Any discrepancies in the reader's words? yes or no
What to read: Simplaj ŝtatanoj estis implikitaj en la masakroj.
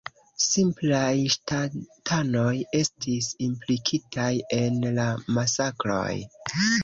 no